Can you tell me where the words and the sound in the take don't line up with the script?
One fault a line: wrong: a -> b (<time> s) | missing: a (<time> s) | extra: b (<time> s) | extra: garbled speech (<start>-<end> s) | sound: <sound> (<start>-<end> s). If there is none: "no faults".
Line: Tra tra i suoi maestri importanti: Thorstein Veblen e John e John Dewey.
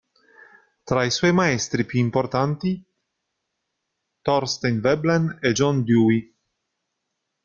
missing: tra (1.0 s)
extra: più (1.9 s)
missing: e John (5.8 s)